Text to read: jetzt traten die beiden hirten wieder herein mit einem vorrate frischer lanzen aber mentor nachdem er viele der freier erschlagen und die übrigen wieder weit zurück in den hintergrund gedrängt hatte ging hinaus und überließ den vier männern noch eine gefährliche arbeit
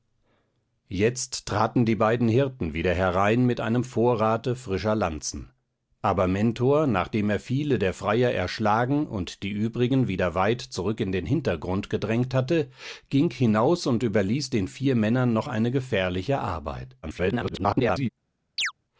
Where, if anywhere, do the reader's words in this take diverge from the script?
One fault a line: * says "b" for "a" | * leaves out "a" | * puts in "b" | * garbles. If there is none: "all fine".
* garbles